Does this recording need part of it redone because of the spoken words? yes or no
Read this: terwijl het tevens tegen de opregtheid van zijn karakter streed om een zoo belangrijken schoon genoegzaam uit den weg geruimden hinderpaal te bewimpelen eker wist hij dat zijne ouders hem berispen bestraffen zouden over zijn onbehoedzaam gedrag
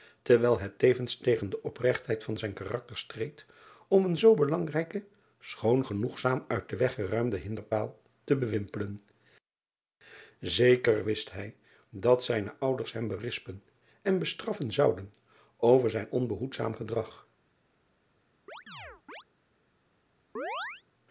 yes